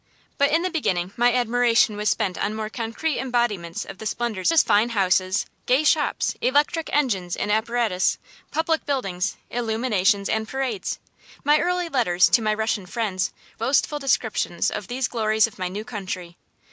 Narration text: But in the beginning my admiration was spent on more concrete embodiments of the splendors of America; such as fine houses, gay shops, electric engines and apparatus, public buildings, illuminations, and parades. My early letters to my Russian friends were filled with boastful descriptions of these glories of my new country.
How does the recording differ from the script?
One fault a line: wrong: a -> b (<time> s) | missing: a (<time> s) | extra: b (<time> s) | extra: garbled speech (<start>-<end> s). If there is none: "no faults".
missing: of America such (4.5 s)
missing: were filled with (13.3 s)